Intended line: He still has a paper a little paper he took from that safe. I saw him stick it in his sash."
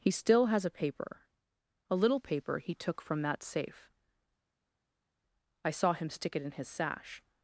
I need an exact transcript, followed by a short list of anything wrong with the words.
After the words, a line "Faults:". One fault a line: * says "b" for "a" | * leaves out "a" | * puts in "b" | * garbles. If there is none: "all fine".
He still has a paper a little paper he took from that safe. I saw him stick it in his sash."
Faults:
all fine